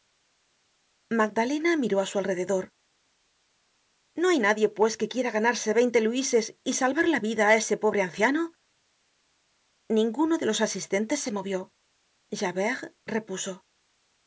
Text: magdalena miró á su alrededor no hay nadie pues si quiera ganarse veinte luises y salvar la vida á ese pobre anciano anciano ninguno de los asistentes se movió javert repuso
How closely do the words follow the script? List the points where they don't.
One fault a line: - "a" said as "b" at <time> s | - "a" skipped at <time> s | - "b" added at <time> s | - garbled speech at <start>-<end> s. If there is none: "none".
- "si" said as "que" at 5.0 s
- "anciano" skipped at 8.4 s